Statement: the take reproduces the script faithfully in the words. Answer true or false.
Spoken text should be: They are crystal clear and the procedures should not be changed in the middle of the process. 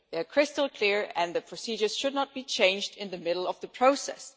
true